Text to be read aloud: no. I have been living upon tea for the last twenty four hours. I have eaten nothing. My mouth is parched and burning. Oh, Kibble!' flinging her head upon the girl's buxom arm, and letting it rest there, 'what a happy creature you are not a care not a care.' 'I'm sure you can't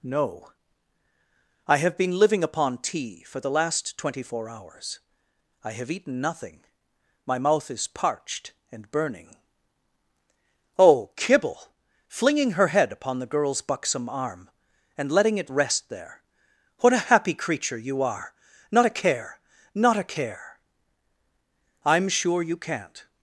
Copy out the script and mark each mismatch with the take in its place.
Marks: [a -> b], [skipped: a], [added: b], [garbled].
no. I have been living upon tea for the last twenty four hours. I have eaten nothing. My mouth is parched and burning. Oh, Kibble!' flinging her head upon the girl's buxom arm, and letting it rest there, 'what a happy creature you are not a care not a care.' 'I'm sure you can't